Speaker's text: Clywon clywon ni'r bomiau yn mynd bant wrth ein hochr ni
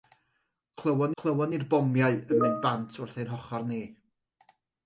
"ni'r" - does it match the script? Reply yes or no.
yes